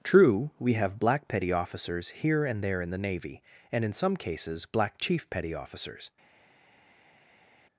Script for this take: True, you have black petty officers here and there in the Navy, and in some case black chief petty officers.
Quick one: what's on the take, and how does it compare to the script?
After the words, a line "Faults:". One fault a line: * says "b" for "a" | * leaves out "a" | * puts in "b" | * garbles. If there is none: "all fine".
True, we have black petty officers here and there in the Navy, and in some cases black chief petty officers.
Faults:
* says "we" for "you"
* says "cases" for "case"